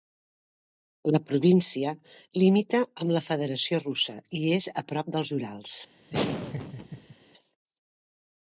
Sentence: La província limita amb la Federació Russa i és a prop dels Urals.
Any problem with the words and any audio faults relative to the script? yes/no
yes